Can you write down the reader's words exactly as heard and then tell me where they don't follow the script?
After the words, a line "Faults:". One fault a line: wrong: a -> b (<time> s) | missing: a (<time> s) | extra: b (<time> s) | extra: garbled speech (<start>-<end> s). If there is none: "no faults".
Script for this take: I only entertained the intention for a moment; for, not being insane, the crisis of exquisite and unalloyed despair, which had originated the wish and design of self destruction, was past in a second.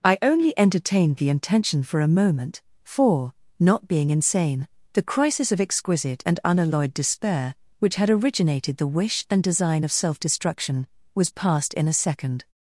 I only entertained the intention for a moment; for, not being insane, the crisis of exquisite and unalloyed despair, which had originated the wish and design of self destruction, was past in a second.
Faults:
no faults